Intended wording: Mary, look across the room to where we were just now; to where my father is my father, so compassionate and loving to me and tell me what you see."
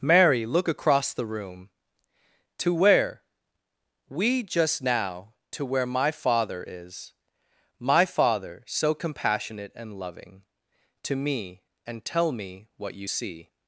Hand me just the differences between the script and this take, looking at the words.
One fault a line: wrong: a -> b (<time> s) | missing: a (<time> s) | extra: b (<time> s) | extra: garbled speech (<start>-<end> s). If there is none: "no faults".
missing: were (4.4 s)